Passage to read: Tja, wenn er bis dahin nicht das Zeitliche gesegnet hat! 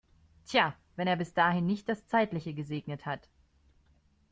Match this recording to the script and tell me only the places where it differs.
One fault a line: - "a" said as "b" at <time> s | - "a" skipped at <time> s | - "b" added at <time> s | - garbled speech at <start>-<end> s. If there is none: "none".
none